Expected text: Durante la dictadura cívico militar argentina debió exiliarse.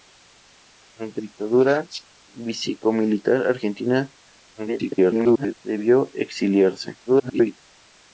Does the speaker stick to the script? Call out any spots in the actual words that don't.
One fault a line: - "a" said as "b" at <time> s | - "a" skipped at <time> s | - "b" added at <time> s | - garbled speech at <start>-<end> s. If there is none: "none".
- "la" skipped at 1.2 s
- garbled speech at 4.5-5.5 s
- garbled speech at 7.1-7.6 s